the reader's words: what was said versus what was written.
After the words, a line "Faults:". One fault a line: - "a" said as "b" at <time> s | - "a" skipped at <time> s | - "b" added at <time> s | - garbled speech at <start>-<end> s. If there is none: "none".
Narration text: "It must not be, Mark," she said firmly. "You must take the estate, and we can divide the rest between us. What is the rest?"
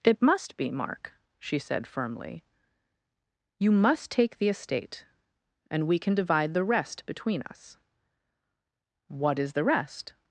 "It must be, Mark," she said firmly. "You must take the estate, and we can divide the rest between us. What is the rest?"
Faults:
- "not" skipped at 0.6 s